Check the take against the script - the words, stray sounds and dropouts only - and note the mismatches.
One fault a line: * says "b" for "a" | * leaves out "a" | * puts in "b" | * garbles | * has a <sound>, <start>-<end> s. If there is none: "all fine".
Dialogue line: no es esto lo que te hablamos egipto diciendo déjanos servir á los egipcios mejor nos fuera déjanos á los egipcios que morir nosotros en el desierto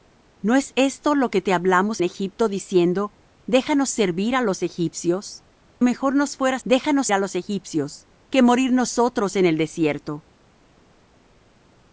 all fine